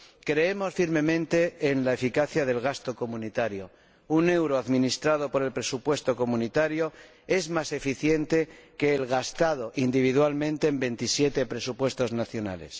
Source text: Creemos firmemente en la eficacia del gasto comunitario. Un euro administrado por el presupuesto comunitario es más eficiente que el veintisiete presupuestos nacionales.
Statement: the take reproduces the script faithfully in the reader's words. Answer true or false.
false